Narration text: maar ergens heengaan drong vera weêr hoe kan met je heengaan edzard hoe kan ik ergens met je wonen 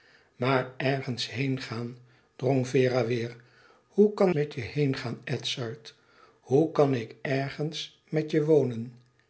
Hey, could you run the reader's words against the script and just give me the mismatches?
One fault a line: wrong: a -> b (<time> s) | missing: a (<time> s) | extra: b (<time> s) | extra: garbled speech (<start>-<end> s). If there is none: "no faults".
no faults